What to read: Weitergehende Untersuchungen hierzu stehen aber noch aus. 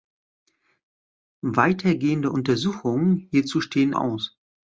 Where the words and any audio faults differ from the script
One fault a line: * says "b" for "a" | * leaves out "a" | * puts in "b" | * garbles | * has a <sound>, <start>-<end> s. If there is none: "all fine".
* leaves out "aber noch"